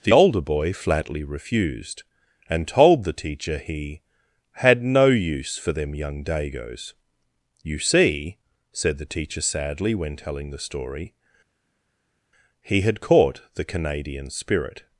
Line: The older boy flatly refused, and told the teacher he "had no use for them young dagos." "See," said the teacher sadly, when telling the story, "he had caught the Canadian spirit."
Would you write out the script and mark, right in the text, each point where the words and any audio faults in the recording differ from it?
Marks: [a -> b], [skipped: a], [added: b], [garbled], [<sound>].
The older boy flatly refused, and told the teacher he "had no use for them young dagos." [added: You] "See," said the teacher sadly, when telling the story, "he had caught the Canadian spirit."